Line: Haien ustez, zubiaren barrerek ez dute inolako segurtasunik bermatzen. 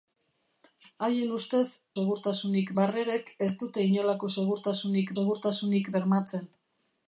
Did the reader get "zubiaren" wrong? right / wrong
wrong